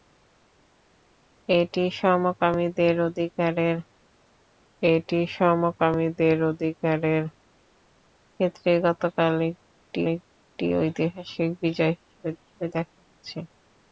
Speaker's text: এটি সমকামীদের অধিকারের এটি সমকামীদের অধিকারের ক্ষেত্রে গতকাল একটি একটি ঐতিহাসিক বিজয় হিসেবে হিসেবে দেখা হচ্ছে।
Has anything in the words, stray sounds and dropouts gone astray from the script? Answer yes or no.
no